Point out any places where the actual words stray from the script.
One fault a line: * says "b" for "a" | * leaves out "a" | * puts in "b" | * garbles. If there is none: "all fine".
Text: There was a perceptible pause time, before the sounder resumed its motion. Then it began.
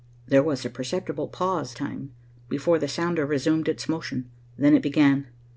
all fine